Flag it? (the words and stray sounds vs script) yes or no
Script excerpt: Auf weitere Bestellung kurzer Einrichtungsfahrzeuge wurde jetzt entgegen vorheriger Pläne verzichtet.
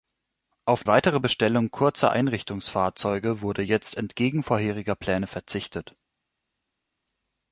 no